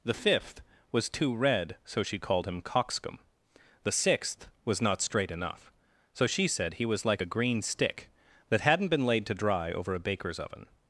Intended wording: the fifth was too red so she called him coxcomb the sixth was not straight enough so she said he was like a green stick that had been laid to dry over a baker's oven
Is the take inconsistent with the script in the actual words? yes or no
yes